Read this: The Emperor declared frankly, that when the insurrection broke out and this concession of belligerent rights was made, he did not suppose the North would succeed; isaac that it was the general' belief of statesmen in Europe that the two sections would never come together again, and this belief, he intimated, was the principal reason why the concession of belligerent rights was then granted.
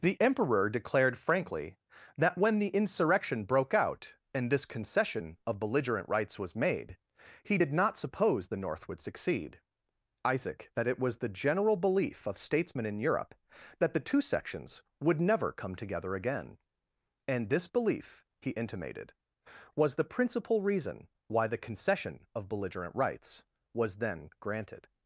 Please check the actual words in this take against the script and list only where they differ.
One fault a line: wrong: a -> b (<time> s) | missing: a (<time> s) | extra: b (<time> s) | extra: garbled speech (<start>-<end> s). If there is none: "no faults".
no faults